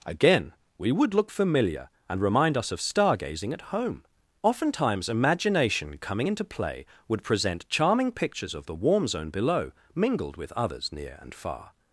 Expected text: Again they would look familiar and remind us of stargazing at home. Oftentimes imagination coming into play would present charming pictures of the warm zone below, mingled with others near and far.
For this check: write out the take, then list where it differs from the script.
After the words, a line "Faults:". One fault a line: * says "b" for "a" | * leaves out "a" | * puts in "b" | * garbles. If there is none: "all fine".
Again we would look familiar and remind us of stargazing at home. Oftentimes imagination coming into play would present charming pictures of the warm zone below, mingled with others near and far.
Faults:
* says "we" for "they"